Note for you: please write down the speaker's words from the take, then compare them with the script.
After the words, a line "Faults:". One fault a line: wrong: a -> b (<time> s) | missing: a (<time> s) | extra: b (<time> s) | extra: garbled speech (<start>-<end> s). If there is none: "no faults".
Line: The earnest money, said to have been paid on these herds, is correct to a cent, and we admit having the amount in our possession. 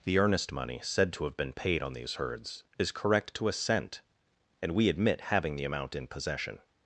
The earnest money, said to have been paid on these herds, is correct to a cent, and we admit having the amount in possession.
Faults:
missing: our (6.1 s)